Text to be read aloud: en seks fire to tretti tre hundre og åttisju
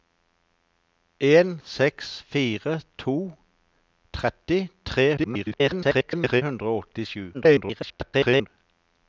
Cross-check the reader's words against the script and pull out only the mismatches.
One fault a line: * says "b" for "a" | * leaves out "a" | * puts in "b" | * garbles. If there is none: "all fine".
* garbles
* garbles